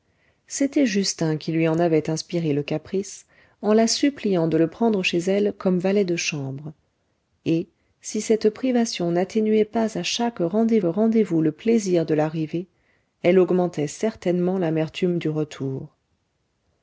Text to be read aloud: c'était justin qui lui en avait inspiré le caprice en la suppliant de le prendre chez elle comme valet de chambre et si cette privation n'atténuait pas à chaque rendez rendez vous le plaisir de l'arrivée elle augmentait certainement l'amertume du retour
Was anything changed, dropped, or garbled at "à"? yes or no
no